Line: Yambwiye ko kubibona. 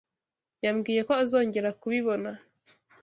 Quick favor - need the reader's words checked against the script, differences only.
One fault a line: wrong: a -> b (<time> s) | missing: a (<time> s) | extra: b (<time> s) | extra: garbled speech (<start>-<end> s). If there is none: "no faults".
extra: azongera (1.2 s)